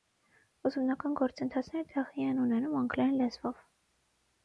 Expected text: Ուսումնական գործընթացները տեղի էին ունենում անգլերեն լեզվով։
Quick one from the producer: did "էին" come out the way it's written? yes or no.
no